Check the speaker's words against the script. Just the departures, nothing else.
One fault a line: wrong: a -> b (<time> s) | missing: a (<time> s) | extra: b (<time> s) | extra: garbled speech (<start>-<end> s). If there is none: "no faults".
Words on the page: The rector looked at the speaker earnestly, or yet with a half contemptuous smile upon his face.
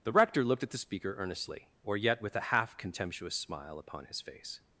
no faults